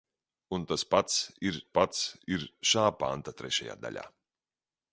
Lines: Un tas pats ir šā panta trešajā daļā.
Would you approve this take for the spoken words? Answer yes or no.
no